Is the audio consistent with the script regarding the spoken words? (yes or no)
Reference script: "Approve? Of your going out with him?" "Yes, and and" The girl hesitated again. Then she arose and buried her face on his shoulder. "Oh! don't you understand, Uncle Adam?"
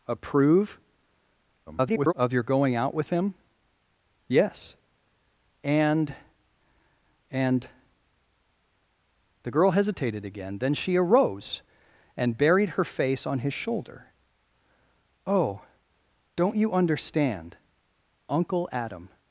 no